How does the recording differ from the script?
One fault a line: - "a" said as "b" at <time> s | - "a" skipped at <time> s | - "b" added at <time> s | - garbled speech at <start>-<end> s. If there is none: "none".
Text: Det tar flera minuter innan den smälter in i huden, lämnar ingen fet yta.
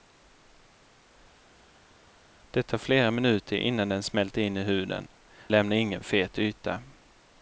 none